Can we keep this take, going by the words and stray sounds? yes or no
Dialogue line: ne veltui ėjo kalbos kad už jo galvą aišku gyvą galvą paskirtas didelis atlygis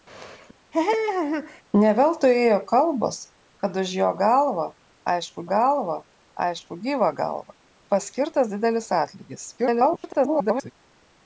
no